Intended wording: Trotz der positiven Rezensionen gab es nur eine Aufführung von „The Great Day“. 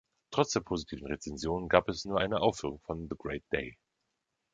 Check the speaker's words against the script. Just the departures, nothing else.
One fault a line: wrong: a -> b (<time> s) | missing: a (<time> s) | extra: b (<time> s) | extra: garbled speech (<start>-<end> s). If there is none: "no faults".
no faults